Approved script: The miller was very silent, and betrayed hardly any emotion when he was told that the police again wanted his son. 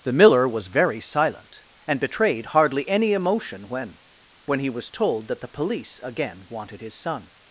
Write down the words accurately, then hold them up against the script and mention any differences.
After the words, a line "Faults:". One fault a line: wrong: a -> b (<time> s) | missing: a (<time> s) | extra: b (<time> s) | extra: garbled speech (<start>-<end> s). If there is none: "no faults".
The miller was very silent, and betrayed hardly any emotion when when he was told that the police again wanted his son.
Faults:
extra: when (4.5 s)